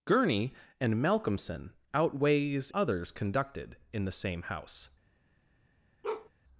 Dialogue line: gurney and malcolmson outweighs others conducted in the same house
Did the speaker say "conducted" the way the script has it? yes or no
yes